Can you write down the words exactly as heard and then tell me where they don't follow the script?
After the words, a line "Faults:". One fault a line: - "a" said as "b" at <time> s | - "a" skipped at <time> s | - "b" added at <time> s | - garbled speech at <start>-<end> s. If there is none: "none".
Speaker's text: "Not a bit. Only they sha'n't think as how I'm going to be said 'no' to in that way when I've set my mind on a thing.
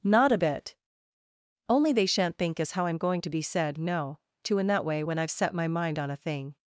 "Not a bit. Only they sha'n't think as how I'm going to be said 'no' to in that way when I've set my mind on a thing.
Faults:
none